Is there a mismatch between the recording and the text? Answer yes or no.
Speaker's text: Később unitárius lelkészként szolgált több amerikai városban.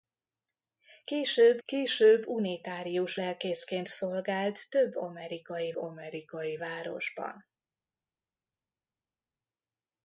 yes